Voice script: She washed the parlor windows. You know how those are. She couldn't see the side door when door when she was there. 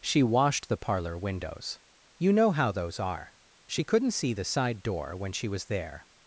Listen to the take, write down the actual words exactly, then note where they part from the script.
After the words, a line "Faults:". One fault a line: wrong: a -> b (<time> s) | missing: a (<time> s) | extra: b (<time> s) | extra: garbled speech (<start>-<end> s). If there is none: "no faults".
She washed the parlor windows. You know how those are. She couldn't see the side door when she was there.
Faults:
missing: door when (5.3 s)